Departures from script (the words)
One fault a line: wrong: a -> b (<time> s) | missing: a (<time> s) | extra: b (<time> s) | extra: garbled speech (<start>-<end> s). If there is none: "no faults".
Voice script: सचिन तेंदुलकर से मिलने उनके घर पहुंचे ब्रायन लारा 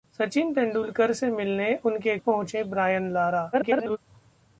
missing: घर (2.2 s)
extra: garbled speech (3.5-4.0 s)